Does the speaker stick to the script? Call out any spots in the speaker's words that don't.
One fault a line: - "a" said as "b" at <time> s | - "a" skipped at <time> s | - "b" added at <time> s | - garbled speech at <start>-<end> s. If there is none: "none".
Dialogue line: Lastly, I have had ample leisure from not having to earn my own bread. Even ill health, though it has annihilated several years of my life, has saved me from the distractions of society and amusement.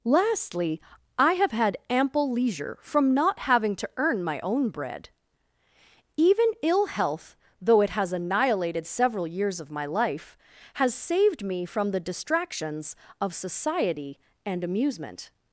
none